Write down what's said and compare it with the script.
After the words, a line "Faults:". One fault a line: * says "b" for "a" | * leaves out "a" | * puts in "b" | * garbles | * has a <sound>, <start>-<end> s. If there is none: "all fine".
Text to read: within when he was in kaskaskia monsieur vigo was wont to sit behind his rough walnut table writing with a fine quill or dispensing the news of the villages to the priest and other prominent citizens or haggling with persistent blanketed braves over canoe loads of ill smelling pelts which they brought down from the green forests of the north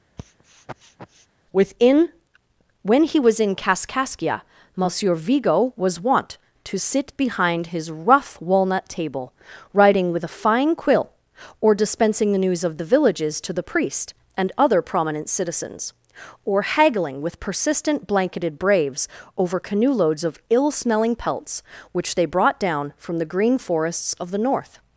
within when he was in kaskaskia monsieur vigo was wont to sit behind his rough walnut table writing with a fine quill or dispensing the news of the villages to the priest and other prominent citizens or haggling with persistent blanketed braves over canoe loads of ill smelling pelts which they brought down from the green forests of the north
Faults:
* has a sniff, 0.2-1.3 s